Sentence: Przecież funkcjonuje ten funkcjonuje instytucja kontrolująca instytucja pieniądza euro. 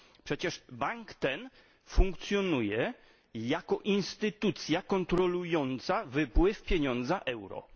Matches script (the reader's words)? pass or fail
fail